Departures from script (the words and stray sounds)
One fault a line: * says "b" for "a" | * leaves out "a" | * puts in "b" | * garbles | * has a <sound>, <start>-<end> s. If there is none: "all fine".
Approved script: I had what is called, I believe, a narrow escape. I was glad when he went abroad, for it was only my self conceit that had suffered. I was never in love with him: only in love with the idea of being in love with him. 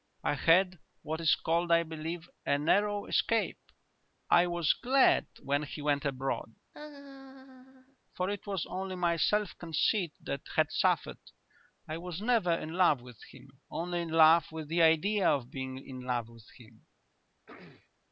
* has a laugh, 6.7-8.0 s
* has a throat clearing, 17.5-17.9 s